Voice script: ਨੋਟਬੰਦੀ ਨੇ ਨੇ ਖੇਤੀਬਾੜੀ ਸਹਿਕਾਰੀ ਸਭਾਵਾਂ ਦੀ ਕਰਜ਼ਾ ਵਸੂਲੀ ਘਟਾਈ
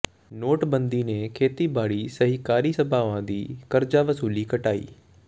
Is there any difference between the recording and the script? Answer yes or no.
yes